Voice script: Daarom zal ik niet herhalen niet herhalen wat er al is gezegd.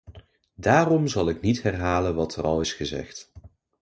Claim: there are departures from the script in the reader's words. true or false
true